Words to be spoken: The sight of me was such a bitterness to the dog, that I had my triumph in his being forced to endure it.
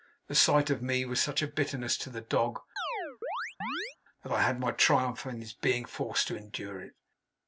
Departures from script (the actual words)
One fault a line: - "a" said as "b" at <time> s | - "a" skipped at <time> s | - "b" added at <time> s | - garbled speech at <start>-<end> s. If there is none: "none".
none